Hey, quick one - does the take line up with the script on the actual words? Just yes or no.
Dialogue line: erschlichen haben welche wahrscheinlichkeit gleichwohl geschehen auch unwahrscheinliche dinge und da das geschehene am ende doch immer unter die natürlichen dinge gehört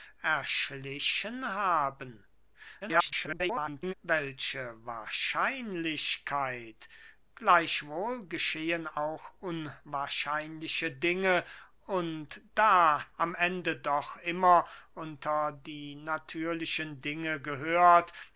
no